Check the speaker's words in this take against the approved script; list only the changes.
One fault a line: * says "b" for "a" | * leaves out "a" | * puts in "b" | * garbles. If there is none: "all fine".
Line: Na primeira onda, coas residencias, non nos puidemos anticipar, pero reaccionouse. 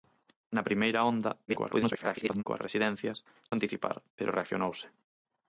* garbles
* leaves out "non nos puidemos"